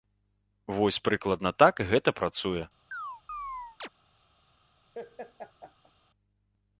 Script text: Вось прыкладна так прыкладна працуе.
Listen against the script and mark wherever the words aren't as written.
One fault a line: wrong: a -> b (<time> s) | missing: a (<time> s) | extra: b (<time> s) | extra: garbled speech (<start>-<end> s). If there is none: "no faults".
wrong: прыкладна -> гэта (1.9 s)